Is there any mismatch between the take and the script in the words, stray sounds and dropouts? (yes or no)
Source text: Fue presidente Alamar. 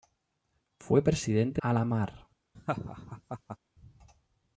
yes